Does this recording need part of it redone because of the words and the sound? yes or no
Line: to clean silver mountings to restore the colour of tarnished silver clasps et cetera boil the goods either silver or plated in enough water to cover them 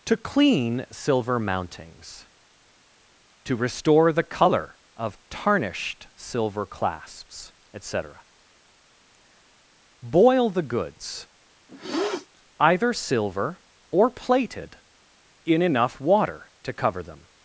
yes